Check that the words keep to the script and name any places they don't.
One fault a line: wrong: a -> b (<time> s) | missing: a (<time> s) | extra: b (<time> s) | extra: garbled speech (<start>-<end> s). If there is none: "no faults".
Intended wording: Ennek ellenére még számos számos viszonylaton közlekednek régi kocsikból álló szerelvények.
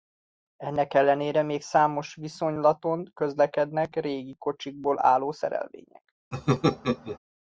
missing: számos (2.1 s)